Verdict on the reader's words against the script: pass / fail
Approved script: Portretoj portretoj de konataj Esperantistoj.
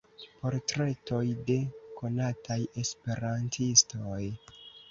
fail